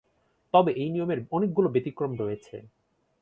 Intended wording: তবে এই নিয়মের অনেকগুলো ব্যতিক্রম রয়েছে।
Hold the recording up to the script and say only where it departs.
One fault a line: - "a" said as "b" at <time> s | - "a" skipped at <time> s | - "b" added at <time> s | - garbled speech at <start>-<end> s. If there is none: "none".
none